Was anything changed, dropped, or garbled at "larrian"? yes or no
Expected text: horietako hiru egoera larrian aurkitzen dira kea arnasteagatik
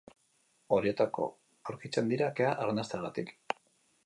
yes